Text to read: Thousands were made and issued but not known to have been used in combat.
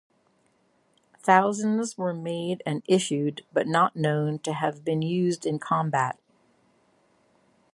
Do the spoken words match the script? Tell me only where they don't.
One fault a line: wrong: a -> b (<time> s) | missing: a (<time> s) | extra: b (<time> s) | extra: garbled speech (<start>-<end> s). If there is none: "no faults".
no faults